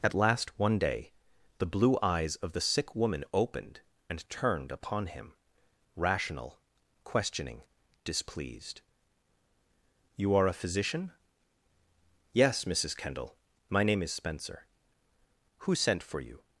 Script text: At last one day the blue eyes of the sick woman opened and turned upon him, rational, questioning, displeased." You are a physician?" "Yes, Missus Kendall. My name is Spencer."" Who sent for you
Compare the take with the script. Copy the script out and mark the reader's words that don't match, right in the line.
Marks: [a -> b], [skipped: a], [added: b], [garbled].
At last one day the blue eyes of the sick woman opened and turned upon him, rational, questioning, displeased." You are a physician?" "Yes, Missus Kendall. My name is Spencer."" Who sent for you